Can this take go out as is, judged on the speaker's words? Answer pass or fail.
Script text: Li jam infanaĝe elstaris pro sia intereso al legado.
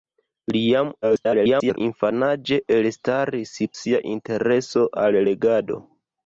fail